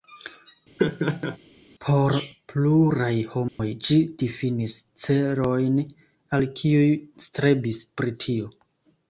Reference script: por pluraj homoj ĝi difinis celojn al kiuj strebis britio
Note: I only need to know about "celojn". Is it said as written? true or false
true